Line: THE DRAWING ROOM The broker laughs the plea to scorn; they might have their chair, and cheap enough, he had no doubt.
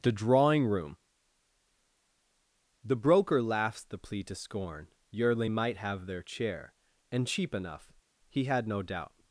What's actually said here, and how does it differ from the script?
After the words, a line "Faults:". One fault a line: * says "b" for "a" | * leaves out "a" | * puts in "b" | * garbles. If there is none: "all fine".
THE DRAWING ROOM The broker laughs the plea to scorn; yearly might have their chair, and cheap enough, he had no doubt.
Faults:
* says "yearly" for "they"